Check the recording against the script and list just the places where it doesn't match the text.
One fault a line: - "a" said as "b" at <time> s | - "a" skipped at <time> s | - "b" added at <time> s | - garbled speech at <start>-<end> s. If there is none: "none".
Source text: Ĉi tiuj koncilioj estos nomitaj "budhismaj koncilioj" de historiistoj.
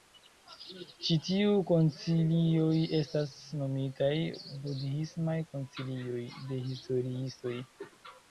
- "estos" said as "estas" at 3.0 s